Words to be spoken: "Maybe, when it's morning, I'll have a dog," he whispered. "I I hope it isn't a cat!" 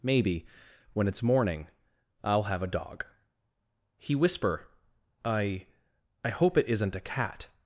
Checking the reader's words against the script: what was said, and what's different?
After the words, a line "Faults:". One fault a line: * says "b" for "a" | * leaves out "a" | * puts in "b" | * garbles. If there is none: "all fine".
"Maybe, when it's morning, I'll have a dog," he whisper. "I I hope it isn't a cat!"
Faults:
* says "whisper" for "whispered"